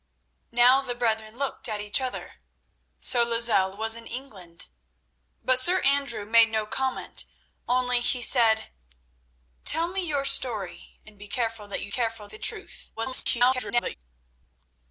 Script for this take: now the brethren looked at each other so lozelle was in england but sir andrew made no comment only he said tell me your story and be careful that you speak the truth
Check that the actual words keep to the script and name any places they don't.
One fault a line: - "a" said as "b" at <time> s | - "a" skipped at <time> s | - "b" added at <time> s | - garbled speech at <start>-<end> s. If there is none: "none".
- "speak" said as "careful" at 11.9 s
- garbled speech at 13.0-13.9 s